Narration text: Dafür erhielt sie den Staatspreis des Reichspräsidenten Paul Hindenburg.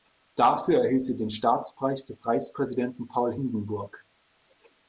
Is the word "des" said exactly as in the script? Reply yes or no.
yes